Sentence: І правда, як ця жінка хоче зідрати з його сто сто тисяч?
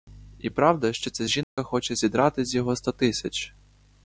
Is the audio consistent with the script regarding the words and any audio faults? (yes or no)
no